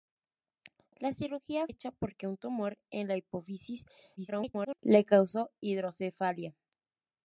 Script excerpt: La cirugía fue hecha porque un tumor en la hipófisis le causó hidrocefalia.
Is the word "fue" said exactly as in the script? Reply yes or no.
no